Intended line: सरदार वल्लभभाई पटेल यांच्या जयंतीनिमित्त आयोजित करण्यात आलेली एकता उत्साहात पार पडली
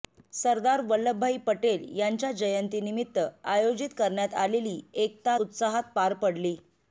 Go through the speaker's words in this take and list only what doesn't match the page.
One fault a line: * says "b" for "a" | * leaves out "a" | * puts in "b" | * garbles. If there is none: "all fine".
all fine